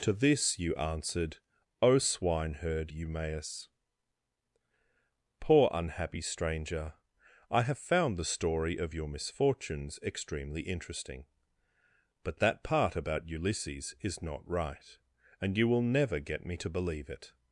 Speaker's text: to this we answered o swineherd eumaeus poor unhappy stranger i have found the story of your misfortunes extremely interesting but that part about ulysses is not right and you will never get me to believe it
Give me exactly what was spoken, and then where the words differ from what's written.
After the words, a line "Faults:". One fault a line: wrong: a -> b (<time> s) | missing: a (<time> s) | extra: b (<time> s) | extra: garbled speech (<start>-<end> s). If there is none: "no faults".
to this you answered o swineherd eumaeus poor unhappy stranger i have found the story of your misfortunes extremely interesting but that part about ulysses is not right and you will never get me to believe it
Faults:
wrong: we -> you (0.6 s)